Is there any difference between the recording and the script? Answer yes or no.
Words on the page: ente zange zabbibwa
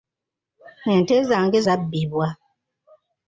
no